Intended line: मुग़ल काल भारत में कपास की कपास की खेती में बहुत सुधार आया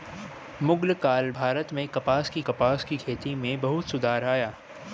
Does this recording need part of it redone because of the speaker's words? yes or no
no